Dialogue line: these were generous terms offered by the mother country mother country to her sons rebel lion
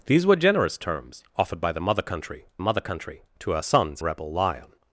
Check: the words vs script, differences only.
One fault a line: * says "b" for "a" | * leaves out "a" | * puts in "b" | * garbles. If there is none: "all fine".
all fine